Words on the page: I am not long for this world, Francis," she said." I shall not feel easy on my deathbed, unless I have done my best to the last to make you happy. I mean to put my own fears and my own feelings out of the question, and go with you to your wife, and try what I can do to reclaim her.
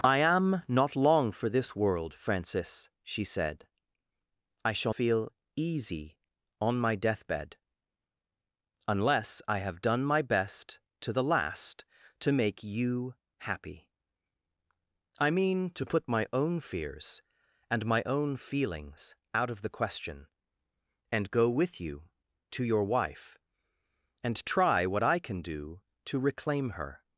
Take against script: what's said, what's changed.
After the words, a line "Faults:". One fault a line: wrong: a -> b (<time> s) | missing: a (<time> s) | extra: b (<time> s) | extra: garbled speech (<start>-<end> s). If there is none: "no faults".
I am not long for this world, Francis," she said." I shall feel easy on my deathbed, unless I have done my best to the last to make you happy. I mean to put my own fears and my own feelings out of the question, and go with you to your wife, and try what I can do to reclaim her.
Faults:
missing: not (5.0 s)